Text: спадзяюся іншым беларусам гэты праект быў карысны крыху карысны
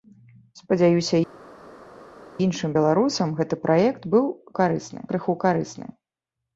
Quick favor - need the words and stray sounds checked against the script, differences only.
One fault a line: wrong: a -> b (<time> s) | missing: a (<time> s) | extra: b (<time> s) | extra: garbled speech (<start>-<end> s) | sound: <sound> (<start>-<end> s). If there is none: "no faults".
no faults